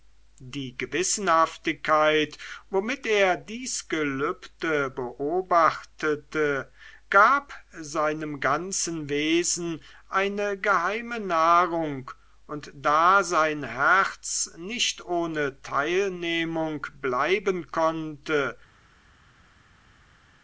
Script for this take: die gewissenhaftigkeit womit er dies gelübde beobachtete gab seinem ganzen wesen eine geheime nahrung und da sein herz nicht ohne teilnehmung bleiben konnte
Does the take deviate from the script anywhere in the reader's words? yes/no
no